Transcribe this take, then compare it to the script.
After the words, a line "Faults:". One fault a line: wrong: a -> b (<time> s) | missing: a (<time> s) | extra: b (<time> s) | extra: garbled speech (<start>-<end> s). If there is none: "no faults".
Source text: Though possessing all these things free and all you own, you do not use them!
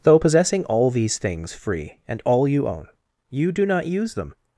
Though possessing all these things free and all you own, you do not use them!
Faults:
no faults